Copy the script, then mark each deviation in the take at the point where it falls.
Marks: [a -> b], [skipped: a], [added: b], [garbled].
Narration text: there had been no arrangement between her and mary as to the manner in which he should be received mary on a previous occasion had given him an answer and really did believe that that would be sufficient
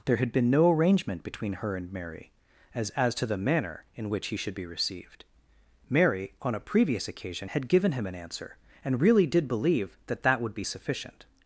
there had been no arrangement between her and mary as [added: as] to the manner in which he should be received mary on a previous occasion had given him an answer and really did believe that that would be sufficient